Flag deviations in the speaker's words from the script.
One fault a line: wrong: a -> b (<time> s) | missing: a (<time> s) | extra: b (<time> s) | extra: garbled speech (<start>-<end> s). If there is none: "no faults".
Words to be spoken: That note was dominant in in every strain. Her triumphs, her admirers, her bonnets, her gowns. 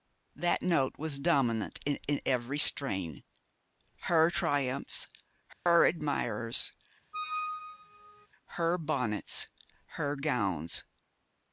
no faults